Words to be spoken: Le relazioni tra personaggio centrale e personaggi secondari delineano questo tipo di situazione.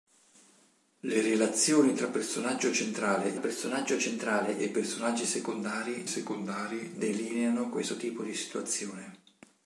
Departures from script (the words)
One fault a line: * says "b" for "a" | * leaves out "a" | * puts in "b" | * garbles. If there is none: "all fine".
* puts in "personaggio centrale"
* puts in "secondari"